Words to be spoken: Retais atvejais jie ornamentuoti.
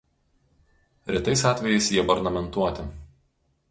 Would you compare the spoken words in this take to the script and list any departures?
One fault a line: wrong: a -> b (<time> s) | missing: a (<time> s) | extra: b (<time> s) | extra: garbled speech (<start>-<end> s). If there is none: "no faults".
no faults